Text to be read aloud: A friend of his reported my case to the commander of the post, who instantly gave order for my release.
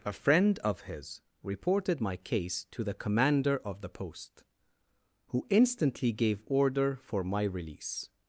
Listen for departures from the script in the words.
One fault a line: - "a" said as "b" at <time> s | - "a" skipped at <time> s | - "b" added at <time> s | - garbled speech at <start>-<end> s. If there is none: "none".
none